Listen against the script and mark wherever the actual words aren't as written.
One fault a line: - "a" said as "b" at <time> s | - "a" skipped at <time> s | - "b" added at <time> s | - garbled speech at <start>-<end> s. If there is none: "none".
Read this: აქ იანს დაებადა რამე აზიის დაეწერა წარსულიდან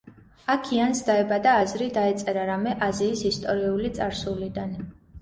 - "აზრი დაეწერა" added at 1.6 s
- "დაეწერა" said as "ისტორიული" at 3.3 s